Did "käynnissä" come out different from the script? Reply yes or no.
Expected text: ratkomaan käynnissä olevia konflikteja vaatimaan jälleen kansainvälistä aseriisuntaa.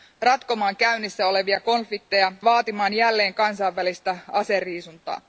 no